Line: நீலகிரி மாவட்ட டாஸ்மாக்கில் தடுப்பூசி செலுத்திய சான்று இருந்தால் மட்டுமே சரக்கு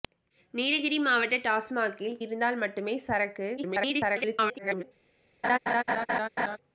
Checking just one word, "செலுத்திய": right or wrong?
wrong